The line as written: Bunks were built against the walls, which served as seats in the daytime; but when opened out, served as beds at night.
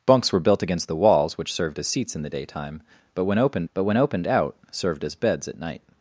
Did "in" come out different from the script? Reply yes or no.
no